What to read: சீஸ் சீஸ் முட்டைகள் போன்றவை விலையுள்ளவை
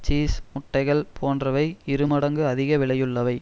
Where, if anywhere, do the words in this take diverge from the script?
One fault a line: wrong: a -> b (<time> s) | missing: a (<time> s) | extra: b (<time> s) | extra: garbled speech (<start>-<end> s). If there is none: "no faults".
missing: சீஸ் (0.3 s)
extra: இரு மடங்கு அதிக (1.9 s)